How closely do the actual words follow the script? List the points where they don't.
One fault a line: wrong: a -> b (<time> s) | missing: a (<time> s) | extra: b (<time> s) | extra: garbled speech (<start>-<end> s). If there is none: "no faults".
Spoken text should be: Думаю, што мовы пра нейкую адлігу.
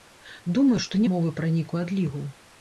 no faults